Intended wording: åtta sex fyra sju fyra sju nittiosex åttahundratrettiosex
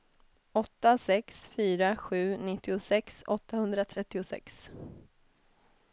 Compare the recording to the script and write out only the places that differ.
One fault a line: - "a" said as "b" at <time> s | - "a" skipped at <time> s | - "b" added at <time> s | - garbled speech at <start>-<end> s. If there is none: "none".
- "fyra sju" skipped at 2.4 s